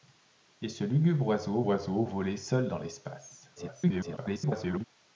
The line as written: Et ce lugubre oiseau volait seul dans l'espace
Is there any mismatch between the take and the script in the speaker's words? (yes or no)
yes